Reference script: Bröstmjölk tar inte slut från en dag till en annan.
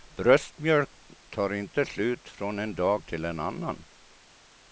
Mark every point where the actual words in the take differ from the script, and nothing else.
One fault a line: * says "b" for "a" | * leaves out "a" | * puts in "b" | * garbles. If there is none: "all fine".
all fine